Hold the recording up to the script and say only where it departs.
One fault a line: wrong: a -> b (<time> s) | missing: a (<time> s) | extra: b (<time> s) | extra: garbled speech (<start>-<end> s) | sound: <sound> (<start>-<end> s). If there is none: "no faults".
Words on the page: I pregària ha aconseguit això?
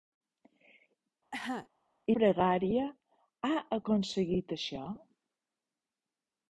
sound: cough (1.3-1.7 s)